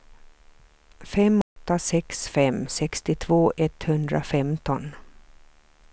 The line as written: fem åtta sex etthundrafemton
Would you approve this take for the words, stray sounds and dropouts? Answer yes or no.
no